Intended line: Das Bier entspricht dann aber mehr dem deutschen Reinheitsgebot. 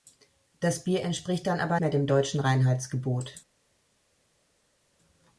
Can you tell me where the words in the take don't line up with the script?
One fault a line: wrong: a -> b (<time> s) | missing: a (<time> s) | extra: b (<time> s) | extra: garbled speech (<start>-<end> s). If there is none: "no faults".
no faults